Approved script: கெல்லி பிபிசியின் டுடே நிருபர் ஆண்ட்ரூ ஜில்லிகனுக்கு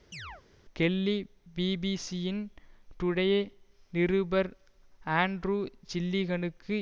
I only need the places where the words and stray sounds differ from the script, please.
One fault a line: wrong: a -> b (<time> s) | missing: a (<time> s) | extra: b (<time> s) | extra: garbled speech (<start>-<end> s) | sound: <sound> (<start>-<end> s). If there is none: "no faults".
sound: chirp (0.1-0.4 s)